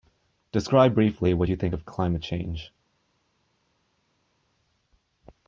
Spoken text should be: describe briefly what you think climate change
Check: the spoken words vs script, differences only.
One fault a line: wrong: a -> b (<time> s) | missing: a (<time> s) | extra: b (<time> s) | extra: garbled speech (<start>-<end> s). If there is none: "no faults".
extra: of (1.7 s)